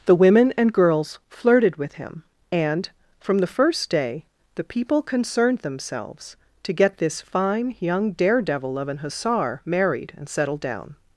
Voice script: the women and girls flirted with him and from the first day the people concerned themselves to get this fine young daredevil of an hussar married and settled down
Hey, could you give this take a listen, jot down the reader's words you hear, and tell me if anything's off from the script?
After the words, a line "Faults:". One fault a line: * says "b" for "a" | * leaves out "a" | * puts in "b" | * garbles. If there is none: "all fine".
the women and girls flirted with him and from the first day the people concerned themselves to get this fine young daredevil of an hussar married and settled down
Faults:
all fine